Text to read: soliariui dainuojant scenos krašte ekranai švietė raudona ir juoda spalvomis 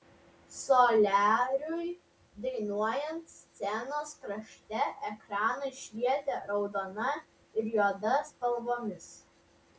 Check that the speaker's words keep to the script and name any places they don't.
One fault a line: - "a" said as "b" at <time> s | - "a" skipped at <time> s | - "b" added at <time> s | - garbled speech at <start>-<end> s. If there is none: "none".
none